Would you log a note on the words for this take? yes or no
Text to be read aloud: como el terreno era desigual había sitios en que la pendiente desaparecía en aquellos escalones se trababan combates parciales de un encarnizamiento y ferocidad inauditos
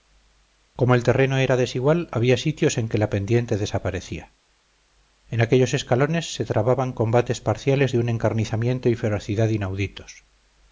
no